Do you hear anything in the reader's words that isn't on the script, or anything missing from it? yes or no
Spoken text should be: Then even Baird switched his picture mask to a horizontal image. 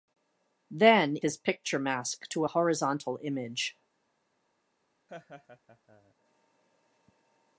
yes